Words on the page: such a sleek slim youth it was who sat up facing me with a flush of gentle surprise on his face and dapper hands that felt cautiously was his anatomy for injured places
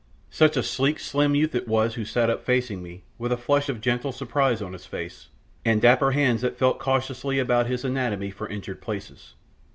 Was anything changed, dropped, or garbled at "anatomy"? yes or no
no